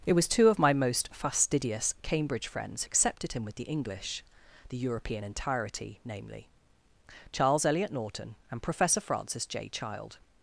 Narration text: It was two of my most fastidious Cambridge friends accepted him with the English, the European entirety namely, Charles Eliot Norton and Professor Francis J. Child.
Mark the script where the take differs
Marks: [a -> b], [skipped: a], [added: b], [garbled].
It was two of my most fastidious Cambridge friends accepted him with the English, the European entirety namely, Charles Eliot Norton and Professor Francis J. Child.